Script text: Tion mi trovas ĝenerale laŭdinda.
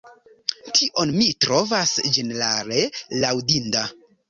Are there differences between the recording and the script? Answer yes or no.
no